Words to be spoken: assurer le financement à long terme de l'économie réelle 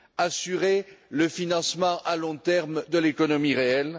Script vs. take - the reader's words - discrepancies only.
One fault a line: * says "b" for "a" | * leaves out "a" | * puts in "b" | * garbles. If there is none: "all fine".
all fine